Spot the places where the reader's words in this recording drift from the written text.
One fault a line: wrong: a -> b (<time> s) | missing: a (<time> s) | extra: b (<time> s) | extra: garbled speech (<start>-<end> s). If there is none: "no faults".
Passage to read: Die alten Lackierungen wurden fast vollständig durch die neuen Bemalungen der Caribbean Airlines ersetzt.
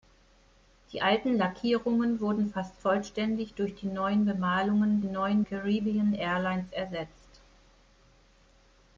wrong: der -> neuen (5.0 s)